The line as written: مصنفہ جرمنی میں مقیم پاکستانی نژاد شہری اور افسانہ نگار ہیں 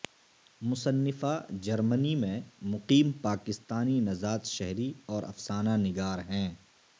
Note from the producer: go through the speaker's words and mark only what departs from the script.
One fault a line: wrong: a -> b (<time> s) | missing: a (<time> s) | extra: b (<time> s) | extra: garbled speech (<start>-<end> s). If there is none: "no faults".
no faults